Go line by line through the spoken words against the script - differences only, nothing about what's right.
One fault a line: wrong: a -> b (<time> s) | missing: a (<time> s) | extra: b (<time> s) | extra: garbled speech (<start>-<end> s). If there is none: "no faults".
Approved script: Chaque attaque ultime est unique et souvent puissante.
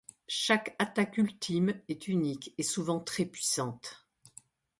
extra: très (3.0 s)